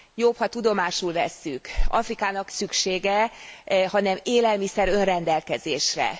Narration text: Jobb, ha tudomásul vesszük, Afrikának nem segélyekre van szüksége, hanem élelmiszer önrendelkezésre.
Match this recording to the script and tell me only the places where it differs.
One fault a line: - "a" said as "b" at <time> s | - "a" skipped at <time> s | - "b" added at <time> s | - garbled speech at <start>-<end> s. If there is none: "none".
- "nem segélyekre van" skipped at 2.5 s